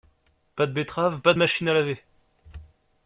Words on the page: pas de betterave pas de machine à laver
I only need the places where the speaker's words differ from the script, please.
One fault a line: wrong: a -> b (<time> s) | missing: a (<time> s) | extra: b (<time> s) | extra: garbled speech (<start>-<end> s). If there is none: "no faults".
no faults